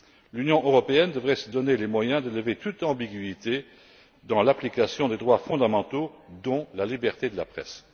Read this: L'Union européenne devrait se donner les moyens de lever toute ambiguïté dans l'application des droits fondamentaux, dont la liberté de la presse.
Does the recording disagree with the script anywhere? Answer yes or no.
no